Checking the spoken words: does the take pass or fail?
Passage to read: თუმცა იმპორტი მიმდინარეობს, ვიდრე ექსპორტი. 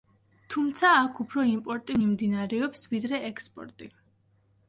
fail